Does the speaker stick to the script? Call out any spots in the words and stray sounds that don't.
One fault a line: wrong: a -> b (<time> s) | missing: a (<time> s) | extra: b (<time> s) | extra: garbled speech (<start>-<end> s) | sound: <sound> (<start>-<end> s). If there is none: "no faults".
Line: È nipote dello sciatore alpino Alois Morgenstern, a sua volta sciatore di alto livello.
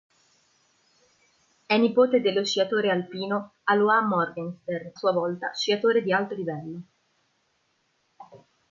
missing: a (4.9 s)